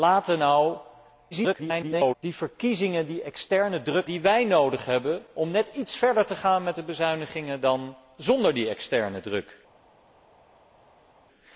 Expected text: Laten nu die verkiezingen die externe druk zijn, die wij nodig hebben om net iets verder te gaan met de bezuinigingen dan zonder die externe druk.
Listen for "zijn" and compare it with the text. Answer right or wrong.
wrong